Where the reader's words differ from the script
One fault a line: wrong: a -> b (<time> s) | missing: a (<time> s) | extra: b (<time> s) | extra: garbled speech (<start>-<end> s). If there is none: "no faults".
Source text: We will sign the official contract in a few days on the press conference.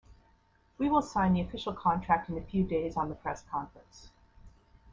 no faults